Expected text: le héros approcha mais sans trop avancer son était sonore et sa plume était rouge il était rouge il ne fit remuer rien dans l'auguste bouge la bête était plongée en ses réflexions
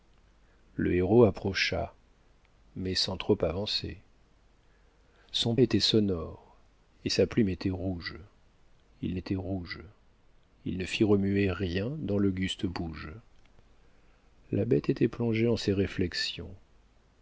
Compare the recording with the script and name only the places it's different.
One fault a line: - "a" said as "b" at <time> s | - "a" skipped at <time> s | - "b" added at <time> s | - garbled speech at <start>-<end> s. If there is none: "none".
none